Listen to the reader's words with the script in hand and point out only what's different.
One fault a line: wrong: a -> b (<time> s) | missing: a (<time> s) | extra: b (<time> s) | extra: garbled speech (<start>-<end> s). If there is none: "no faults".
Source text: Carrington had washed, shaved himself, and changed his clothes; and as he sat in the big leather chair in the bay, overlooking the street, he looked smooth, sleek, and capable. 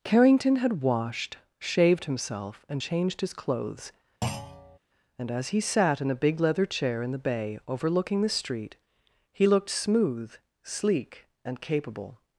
wrong: the -> a (6.1 s)